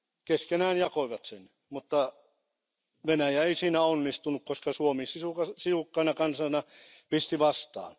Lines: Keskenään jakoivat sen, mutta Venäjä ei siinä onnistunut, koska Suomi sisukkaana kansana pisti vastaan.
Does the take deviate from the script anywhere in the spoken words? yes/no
no